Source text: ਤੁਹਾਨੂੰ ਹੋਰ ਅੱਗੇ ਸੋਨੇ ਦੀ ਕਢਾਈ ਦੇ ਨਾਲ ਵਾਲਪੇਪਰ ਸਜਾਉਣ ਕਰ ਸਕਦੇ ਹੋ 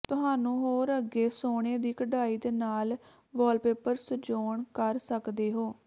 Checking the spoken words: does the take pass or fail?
pass